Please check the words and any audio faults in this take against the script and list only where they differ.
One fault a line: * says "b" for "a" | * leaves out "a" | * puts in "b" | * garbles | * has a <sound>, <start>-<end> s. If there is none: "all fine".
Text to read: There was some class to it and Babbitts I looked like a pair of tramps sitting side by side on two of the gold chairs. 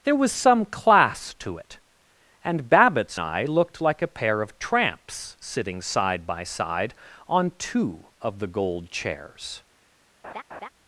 * has a laugh, 10.2-10.7 s